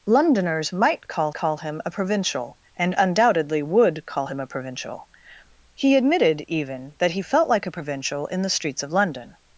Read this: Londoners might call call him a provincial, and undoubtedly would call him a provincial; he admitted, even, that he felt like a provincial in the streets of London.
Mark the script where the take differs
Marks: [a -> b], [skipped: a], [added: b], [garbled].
Londoners might call call him a provincial, and undoubtedly would call him a provincial; he admitted, even, that he felt like a provincial in the streets of London.